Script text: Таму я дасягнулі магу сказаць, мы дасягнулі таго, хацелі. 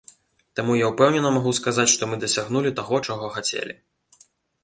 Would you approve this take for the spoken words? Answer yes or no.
no